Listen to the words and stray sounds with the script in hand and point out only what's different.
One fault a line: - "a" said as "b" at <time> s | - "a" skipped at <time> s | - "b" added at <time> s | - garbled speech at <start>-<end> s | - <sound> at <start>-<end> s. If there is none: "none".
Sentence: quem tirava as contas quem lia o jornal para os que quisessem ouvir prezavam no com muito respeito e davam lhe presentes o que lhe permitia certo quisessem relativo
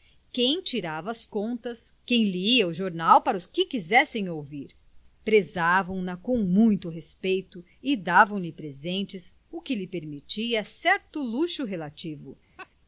- "no" said as "na" at 6.0 s
- "quisessem" said as "luxo" at 11.2 s
- laugh at 12.6-12.7 s